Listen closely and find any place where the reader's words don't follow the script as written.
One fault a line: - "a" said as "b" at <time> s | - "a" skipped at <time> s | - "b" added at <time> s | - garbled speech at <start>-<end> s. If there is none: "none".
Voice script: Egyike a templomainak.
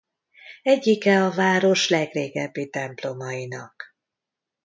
- "város legrégebbi" added at 1.3 s